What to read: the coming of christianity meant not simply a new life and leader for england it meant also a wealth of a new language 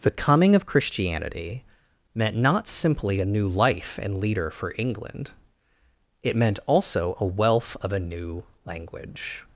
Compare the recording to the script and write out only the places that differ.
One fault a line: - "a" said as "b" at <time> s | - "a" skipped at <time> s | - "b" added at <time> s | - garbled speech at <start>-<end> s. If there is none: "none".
none